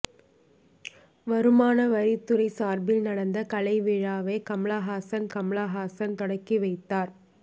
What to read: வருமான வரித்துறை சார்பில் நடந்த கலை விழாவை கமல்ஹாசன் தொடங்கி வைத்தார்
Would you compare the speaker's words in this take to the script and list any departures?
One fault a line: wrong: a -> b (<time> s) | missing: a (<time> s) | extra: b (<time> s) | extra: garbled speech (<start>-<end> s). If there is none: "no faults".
extra: கமல்ஹாசன் (5.4 s)